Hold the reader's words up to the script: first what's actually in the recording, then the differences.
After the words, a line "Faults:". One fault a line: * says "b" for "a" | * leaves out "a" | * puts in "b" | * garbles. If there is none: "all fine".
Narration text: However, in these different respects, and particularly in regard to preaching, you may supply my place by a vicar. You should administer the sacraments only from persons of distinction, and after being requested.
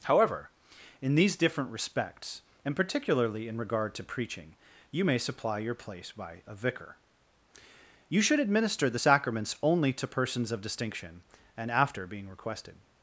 However, in these different respects, and particularly in regard to preaching, you may supply your place by a vicar. You should administer the sacraments only to persons of distinction, and after being requested.
Faults:
* says "your" for "my"
* says "to" for "from"